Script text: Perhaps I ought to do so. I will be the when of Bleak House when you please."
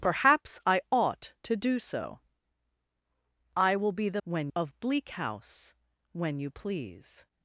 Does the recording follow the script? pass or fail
pass